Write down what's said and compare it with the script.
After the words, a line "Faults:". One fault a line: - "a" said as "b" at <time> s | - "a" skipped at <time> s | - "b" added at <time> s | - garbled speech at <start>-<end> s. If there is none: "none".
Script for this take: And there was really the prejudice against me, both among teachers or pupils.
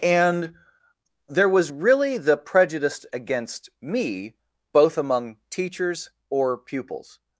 And there was really the prejudice against me, both among teachers or pupils.
Faults:
none